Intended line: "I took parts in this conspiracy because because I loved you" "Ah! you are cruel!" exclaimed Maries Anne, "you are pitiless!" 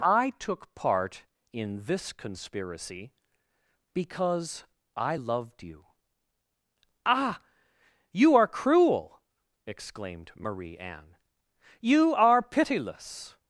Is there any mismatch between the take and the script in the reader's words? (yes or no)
yes